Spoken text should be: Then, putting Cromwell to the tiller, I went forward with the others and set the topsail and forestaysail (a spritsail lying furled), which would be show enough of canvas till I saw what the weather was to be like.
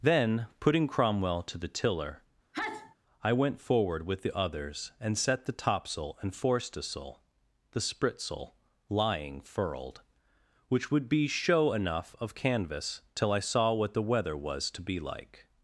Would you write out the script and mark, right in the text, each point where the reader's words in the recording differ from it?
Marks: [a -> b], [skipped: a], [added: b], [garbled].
Then, putting Cromwell to the tiller, I went forward with the others and set the topsail and forestaysail [(a -> the] spritsail lying furled), which would be show enough of canvas till I saw what the weather was to be like.